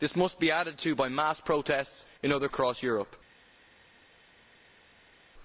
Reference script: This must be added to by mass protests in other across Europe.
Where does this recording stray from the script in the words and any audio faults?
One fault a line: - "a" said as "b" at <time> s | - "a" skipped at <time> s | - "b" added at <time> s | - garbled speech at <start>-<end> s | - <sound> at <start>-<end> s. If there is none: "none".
none